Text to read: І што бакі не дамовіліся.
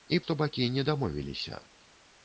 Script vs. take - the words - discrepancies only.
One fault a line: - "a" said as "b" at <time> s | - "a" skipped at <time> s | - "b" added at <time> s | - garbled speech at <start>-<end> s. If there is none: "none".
none